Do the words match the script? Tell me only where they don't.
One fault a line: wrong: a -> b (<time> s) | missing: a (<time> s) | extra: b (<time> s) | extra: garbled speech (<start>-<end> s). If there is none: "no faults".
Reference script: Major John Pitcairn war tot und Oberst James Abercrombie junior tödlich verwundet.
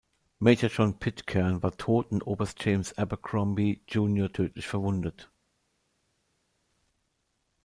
no faults